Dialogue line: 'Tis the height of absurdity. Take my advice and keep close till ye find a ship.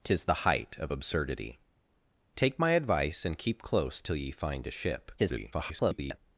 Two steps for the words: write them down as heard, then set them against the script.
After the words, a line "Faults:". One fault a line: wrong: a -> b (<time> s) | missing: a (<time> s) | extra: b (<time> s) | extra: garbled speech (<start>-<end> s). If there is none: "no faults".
'Tis the height of absurdity. Take my advice and keep close till ye find a ship. [garbled]
Faults:
extra: garbled speech (5.2-6.2 s)